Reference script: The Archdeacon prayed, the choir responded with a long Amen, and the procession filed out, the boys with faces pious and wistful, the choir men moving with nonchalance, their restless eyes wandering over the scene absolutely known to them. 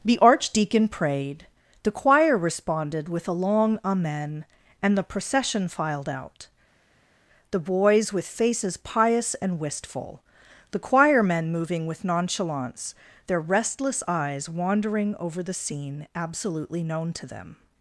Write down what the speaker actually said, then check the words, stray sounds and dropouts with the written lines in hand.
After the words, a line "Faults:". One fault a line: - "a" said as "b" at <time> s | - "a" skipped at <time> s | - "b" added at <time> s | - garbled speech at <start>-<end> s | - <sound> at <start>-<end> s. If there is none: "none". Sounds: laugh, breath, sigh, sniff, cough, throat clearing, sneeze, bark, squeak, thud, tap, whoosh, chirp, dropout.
The Archdeacon prayed, the choir responded with a long Amen, and the procession filed out, the boys with faces pious and wistful, the choir men moving with nonchalance, their restless eyes wandering over the scene absolutely known to them.
Faults:
none